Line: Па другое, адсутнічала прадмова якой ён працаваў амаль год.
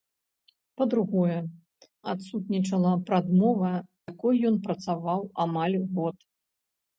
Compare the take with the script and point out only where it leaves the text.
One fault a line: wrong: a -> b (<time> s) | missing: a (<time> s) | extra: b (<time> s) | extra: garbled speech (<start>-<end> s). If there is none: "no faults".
no faults